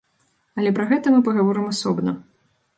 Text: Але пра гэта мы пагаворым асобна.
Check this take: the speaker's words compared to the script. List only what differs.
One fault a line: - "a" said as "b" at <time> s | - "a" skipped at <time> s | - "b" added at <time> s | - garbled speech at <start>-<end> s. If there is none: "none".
none